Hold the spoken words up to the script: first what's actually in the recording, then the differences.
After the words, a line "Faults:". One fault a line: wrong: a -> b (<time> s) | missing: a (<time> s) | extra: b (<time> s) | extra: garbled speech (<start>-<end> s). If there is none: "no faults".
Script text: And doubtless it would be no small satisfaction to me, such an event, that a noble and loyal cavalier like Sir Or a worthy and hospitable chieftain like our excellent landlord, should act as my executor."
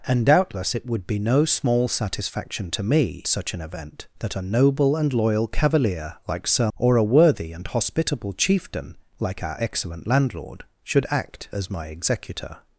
And doubtless it would be no small satisfaction to me, such an event, that a noble and loyal cavalier like Sir Or a worthy and hospitable chieftain like our excellent landlord, should act as my executor."
Faults:
no faults